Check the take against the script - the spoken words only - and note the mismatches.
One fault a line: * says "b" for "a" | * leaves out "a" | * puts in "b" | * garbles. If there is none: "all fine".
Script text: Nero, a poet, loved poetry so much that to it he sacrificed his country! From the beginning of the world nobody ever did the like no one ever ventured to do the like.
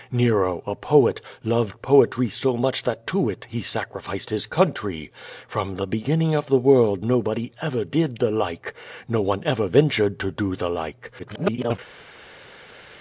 * garbles